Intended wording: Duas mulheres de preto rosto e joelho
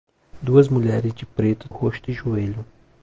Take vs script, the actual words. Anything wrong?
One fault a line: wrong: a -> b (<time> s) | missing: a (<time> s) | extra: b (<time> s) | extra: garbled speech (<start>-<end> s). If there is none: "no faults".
no faults